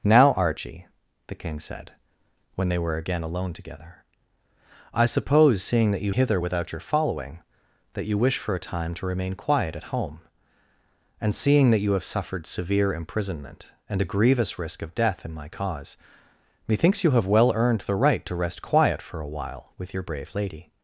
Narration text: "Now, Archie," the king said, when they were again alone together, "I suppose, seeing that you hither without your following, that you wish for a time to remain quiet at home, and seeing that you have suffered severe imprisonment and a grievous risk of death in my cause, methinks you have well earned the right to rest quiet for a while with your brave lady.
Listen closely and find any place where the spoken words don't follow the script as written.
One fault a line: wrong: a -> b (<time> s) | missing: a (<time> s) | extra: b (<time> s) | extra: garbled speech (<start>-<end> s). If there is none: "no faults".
no faults